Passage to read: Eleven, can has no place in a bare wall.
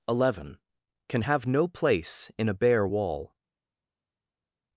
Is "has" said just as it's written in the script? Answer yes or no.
no